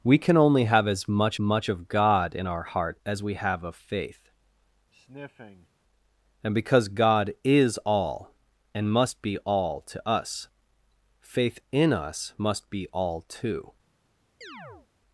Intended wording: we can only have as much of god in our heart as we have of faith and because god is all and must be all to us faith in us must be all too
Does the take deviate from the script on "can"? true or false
false